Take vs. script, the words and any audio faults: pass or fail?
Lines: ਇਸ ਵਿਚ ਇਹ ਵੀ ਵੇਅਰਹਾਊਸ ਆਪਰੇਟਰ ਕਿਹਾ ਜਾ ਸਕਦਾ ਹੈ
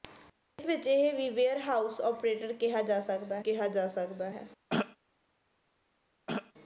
fail